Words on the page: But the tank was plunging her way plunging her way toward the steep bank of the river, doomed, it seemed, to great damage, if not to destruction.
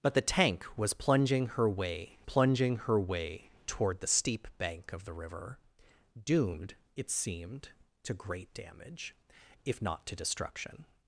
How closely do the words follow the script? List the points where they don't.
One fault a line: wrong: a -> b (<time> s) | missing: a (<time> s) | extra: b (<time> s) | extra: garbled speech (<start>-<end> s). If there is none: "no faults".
no faults